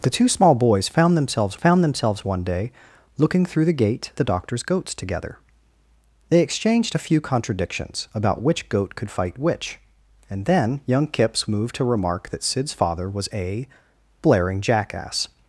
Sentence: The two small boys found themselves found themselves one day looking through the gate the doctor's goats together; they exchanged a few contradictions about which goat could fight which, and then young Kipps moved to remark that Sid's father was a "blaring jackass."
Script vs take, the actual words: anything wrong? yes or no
no